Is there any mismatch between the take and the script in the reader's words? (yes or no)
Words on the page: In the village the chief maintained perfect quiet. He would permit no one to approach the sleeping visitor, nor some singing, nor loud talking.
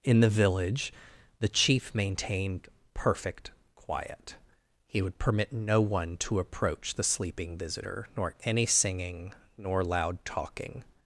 yes